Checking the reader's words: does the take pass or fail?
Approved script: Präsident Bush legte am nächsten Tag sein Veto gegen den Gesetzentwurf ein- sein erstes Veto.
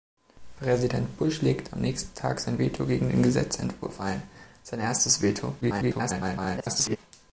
fail